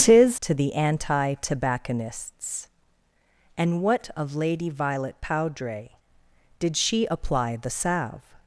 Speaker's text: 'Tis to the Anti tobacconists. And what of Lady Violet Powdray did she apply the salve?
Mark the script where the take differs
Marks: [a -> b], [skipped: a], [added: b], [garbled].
'Tis to the Anti tobacconists. And what of Lady Violet Powdray did she apply the salve?